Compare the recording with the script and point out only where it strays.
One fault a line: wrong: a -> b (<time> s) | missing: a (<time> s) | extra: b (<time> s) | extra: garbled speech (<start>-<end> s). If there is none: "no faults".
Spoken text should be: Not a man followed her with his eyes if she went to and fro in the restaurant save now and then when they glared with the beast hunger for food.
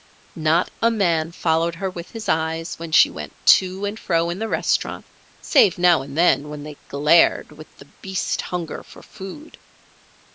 wrong: if -> when (2.8 s)